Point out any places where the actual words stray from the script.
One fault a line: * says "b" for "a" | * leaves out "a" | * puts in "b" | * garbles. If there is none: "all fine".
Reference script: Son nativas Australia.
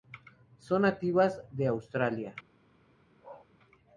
* puts in "de"